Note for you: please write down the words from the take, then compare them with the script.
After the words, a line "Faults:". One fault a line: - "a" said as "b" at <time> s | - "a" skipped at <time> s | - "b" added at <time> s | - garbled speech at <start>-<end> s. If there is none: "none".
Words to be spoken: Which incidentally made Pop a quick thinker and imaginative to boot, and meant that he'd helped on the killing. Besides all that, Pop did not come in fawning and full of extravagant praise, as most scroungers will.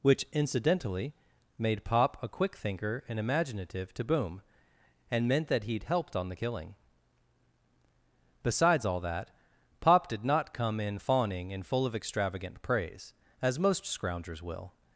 Which incidentally made Pop a quick thinker and imaginative to boom, and meant that he'd helped on the killing. Besides all that, Pop did not come in fawning and full of extravagant praise, as most scroungers will.
Faults:
- "boot" said as "boom" at 4.0 s